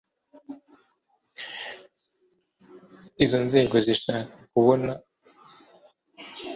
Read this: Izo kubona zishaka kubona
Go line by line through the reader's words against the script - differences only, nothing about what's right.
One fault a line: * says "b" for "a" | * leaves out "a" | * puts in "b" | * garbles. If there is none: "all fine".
* says "nzego" for "kubona"